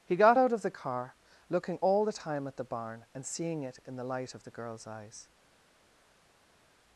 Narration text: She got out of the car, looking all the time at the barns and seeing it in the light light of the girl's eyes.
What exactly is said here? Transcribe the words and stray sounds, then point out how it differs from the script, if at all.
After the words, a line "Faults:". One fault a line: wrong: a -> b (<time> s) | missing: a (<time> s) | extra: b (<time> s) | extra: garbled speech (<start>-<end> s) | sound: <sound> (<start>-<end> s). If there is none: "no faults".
He got out of the car, looking all the time at the barn and seeing it in the light of the girl's eyes.
Faults:
wrong: She -> He (0.0 s)
wrong: barns -> barn (2.7 s)
missing: light (4.3 s)